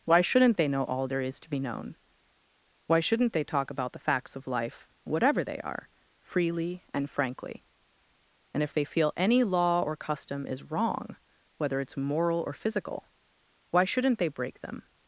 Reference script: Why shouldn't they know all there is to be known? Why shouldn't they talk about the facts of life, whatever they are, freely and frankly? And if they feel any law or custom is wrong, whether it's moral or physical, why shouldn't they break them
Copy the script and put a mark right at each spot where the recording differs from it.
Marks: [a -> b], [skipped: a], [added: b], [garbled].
Why shouldn't they know all there is to be known? Why shouldn't they talk about the facts of life, whatever they are, freely and frankly? And if they feel any law or custom is wrong, whether it's moral or physical, why shouldn't they break them